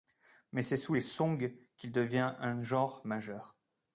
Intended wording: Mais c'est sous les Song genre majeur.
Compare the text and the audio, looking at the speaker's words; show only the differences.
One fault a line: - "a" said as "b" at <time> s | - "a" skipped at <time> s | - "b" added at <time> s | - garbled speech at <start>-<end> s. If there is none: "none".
- "qu'il devient un" added at 1.8 s